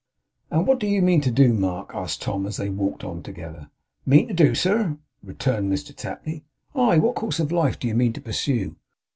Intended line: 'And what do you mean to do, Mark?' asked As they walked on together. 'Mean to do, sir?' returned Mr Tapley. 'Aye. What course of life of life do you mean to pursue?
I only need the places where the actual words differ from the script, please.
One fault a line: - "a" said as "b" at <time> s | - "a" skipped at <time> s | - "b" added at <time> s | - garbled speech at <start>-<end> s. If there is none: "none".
- "Tom" added at 2.2 s
- "of life" skipped at 7.8 s